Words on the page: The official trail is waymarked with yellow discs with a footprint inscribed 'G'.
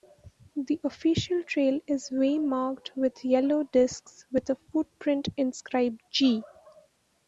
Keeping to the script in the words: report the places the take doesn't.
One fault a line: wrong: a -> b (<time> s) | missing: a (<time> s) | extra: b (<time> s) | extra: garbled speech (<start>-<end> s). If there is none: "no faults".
no faults